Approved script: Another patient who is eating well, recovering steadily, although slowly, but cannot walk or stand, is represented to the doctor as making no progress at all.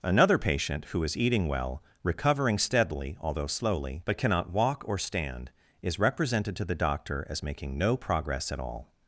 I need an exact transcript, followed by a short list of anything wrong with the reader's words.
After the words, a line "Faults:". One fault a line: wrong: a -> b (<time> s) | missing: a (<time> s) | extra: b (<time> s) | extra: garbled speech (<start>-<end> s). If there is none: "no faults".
Another patient who is eating well, recovering steadily, although slowly, but cannot walk or stand, is represented to the doctor as making no progress at all.
Faults:
no faults